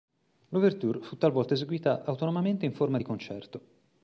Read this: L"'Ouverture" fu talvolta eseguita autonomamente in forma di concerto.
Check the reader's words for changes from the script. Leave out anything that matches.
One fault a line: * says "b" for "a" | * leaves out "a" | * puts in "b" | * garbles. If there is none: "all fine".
all fine